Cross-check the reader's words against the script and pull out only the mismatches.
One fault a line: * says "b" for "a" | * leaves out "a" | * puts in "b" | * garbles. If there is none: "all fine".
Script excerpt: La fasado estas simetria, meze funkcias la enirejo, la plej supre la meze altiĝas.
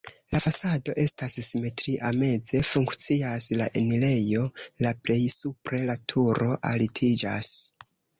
* says "turo" for "meze"